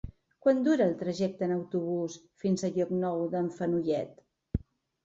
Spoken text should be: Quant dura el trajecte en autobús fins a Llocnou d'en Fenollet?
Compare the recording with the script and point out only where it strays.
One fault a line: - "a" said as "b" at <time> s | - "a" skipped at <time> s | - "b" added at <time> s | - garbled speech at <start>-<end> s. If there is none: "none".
none